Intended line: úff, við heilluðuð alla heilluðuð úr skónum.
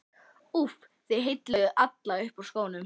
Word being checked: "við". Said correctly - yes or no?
no